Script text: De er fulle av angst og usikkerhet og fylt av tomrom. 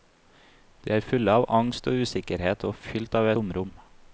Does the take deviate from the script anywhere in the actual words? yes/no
no